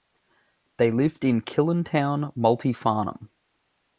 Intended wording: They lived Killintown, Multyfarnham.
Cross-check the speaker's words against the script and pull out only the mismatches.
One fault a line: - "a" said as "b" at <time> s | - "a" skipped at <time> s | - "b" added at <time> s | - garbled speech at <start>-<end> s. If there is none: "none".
- "in" added at 1.2 s